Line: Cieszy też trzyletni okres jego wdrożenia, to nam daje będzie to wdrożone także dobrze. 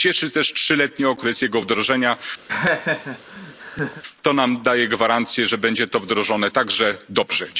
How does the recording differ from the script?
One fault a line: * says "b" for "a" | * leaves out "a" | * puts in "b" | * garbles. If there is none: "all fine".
* puts in "gwarancję że"